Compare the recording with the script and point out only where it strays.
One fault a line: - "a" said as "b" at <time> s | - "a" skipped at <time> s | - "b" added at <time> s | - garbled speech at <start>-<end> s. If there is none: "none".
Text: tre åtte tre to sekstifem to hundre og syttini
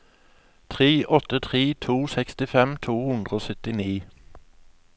none